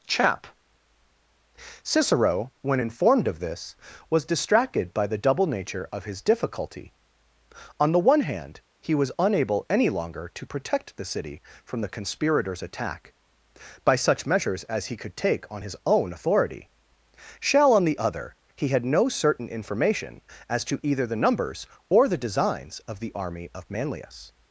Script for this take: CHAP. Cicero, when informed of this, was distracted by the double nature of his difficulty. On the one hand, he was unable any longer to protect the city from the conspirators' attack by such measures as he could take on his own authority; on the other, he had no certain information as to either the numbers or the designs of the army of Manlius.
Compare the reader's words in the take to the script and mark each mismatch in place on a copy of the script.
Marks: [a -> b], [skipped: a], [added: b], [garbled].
CHAP. Cicero, when informed of this, was distracted by the double nature of his difficulty. On the one hand, he was unable any longer to protect the city from the conspirators' attack by such measures as he could take on his own authority; [added: shall] on the other, he had no certain information as to either the numbers or the designs of the army of Manlius.